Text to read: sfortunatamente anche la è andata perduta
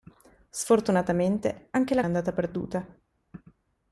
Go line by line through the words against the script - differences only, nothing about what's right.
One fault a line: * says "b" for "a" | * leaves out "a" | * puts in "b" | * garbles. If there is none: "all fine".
all fine